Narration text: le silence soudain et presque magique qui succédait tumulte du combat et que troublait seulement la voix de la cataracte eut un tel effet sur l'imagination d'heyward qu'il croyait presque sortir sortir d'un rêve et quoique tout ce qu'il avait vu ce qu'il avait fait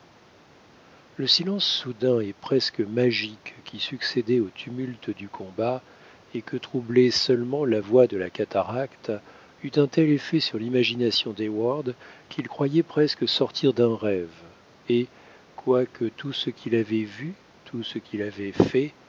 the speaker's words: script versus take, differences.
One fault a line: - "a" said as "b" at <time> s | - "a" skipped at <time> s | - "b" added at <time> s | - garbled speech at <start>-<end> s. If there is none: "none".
- "au" added at 4.4 s
- "sortir" skipped at 13.7 s
- "tout" added at 17.6 s